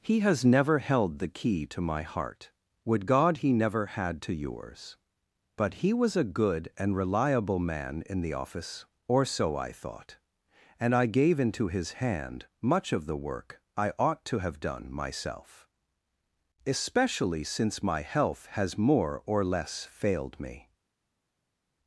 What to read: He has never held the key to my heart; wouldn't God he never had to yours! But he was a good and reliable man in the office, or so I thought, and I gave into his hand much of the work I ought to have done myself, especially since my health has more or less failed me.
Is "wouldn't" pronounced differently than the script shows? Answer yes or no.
yes